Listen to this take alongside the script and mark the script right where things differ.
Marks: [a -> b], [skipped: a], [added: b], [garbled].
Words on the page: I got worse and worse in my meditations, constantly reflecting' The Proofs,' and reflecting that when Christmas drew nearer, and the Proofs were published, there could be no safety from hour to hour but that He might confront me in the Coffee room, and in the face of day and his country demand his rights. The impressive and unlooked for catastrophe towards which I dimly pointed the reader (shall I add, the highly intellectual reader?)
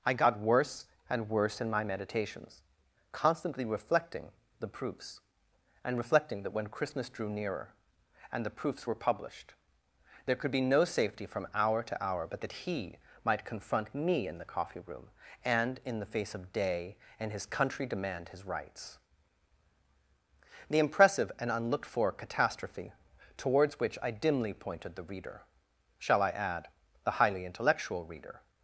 I got worse and worse in my meditations, constantly reflecting' The Proofs,' and reflecting that when Christmas drew nearer, and the Proofs were published, there could be no safety from hour to hour but that He might confront me in the Coffee room, and in the face of day and his country demand his rights. The impressive and unlooked for catastrophe towards which I dimly pointed the reader (shall I add, the highly intellectual reader?)